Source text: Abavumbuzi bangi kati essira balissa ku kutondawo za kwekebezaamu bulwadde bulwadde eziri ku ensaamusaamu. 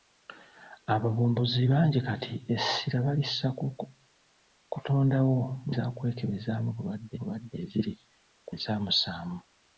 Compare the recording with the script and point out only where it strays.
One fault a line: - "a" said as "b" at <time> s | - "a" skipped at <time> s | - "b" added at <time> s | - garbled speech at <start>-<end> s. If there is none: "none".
none